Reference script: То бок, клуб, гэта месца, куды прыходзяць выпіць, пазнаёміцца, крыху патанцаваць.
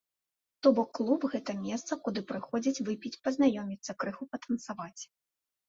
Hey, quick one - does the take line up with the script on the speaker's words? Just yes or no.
yes